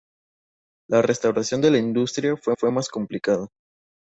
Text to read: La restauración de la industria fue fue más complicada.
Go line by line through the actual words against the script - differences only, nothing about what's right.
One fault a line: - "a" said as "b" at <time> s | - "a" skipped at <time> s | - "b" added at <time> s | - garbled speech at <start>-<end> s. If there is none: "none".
none